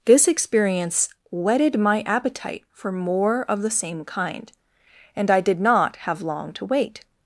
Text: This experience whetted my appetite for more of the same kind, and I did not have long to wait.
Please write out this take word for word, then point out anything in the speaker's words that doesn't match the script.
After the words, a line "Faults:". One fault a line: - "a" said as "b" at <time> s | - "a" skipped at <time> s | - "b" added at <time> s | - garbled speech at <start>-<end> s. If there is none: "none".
This experience whetted my appetite for more of the same kind, and I did not have long to wait.
Faults:
none